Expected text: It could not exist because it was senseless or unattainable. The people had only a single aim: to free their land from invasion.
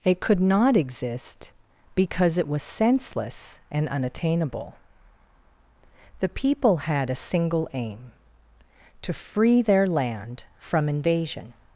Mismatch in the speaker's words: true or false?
true